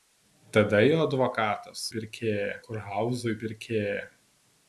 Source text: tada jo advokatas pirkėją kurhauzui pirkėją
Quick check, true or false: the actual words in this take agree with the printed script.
true